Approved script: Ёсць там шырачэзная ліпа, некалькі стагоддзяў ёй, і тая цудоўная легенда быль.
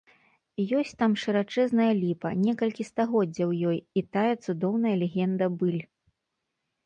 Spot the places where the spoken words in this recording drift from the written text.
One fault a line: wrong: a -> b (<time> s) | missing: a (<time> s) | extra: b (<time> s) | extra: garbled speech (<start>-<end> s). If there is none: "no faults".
no faults